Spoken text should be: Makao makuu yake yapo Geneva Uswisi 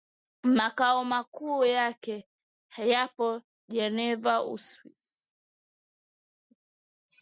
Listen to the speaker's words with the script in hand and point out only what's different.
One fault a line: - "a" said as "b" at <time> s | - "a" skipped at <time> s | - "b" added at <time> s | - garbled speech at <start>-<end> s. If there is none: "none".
none